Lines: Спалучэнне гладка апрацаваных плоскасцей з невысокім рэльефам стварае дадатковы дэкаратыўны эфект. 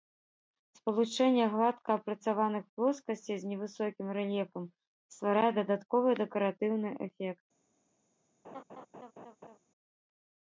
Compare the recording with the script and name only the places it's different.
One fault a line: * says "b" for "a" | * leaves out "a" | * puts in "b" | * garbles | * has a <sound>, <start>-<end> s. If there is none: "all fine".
* has a laugh, 8.4-9.6 s